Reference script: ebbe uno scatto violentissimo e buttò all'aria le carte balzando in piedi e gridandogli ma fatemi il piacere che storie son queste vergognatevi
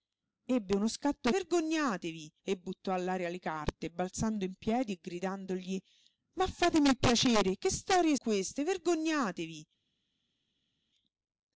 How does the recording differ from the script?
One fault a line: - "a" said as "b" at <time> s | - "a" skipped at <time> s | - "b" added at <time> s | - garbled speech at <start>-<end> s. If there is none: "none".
- "violentissimo" said as "vergognatevi" at 1.3 s
- "son" skipped at 8.2 s